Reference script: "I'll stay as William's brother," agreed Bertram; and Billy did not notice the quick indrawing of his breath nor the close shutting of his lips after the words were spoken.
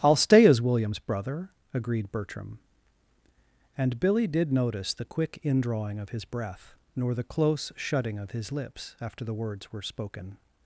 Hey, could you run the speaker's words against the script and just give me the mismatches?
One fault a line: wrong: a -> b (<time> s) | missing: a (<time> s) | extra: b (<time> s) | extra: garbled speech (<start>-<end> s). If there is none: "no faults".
missing: not (4.5 s)